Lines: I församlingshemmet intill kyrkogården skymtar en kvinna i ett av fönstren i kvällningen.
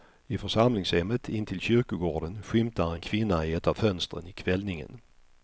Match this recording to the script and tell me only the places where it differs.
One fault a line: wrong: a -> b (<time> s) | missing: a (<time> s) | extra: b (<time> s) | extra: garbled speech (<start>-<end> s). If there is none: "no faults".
no faults